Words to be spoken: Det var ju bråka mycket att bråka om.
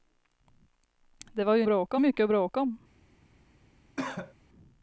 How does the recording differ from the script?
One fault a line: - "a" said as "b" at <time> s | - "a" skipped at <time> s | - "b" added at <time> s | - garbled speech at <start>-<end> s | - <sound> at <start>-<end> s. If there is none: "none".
- cough at 4.0-4.3 s